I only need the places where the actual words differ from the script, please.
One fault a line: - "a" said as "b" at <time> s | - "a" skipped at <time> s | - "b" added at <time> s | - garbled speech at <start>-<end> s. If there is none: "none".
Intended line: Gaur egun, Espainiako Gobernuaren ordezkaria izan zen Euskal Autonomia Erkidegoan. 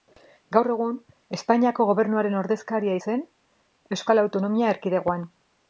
- "izan" skipped at 3.0 s